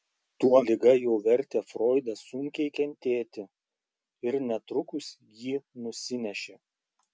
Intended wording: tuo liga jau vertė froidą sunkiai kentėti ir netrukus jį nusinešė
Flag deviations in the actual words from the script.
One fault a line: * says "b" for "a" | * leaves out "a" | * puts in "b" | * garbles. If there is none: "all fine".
all fine